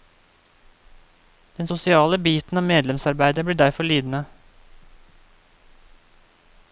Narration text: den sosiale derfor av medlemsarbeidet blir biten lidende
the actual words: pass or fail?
fail